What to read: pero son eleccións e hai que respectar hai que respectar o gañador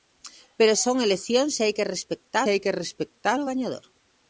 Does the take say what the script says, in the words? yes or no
yes